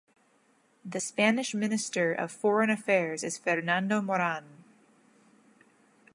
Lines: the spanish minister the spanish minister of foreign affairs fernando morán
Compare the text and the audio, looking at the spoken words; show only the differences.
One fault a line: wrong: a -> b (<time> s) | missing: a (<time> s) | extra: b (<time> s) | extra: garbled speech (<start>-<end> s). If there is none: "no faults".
missing: the spanish minister (2.1 s)
extra: is (3.2 s)